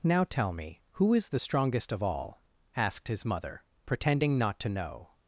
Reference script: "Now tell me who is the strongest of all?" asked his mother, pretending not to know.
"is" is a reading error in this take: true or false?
false